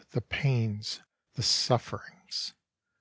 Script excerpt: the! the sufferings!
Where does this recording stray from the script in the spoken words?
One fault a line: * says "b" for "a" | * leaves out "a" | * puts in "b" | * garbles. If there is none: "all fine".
* puts in "pains"